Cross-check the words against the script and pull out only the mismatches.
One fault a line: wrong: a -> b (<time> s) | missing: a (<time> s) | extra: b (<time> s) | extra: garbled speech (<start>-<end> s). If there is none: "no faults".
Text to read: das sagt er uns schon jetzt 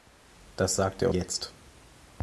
missing: uns schon (1.1 s)